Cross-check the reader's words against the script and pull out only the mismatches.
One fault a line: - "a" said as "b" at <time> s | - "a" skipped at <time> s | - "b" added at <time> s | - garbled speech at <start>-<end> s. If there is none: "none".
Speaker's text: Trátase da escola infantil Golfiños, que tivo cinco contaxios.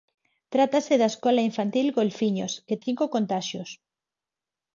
- "tivo" skipped at 2.8 s